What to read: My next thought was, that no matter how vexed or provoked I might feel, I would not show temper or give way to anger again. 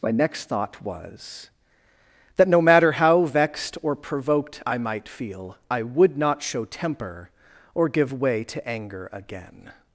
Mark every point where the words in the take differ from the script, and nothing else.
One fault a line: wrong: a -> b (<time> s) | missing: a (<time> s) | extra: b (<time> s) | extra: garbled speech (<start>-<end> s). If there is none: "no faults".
no faults